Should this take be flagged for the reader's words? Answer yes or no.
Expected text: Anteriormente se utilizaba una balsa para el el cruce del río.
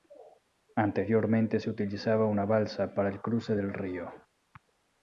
yes